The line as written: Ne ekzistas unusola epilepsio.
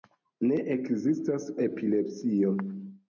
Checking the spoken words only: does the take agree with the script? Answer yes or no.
no